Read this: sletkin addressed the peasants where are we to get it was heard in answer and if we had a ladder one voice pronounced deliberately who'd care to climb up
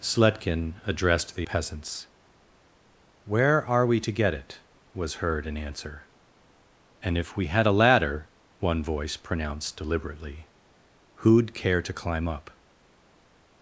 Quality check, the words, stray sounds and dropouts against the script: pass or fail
pass